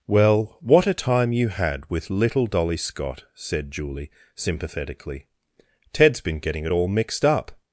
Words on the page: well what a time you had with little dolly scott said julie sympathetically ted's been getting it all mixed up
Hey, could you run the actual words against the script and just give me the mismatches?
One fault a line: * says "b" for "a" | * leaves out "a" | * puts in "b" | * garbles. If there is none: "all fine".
all fine